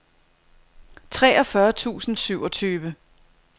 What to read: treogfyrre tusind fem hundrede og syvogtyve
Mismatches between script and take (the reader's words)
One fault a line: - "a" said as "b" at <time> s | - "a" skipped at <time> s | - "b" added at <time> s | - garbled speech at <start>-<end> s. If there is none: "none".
- "fem hundrede og" skipped at 2.1 s